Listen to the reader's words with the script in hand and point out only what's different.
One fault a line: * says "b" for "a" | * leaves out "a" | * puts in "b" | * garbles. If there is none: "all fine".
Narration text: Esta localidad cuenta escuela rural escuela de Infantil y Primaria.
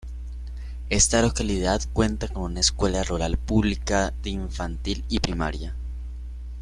* puts in "con una"
* says "pública" for "escuela"